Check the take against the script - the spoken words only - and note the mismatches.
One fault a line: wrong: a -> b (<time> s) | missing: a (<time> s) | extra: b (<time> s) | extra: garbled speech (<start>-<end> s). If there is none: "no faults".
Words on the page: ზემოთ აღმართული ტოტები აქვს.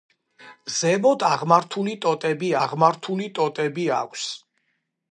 extra: აღმართული ტოტები (2.6 s)